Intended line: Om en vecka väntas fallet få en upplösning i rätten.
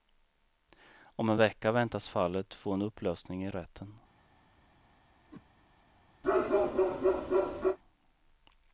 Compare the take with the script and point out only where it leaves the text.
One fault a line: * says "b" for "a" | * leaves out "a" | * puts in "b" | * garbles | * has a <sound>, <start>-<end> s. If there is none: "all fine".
* has a whoosh, 5.3-5.5 s
* has a bark, 6.2-7.8 s